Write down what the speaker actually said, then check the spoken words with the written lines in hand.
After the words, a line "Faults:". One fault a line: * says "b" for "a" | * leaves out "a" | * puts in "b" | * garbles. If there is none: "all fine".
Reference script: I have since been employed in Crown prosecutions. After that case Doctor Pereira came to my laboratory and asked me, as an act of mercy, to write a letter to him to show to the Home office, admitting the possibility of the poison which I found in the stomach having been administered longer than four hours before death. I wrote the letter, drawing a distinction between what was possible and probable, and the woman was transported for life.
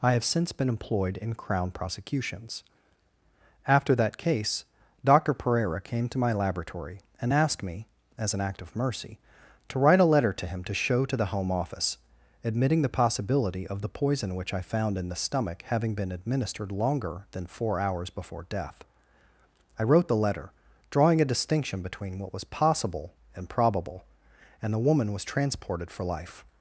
I have since been employed in Crown prosecutions. After that case Doctor Pereira came to my laboratory and asked me, as an act of mercy, to write a letter to him to show to the Home office, admitting the possibility of the poison which I found in the stomach having been administered longer than four hours before death. I wrote the letter, drawing a distinction between what was possible and probable, and the woman was transported for life.
Faults:
all fine